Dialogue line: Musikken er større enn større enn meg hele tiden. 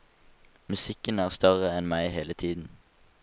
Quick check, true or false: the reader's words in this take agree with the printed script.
false